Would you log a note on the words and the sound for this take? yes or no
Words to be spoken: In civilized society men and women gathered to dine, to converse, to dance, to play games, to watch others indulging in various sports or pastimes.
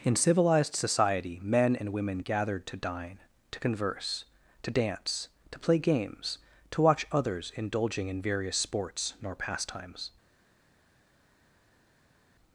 yes